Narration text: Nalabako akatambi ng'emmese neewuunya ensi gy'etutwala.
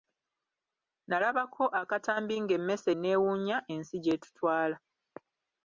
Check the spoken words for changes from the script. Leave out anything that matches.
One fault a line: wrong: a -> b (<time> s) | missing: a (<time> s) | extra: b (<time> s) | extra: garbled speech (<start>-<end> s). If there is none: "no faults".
no faults